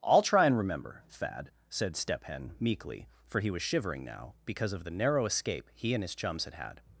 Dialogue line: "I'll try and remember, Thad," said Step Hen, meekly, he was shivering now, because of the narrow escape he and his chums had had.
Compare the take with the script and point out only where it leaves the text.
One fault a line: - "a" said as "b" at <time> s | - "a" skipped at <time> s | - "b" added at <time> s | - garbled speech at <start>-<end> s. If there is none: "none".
- "for" added at 3.3 s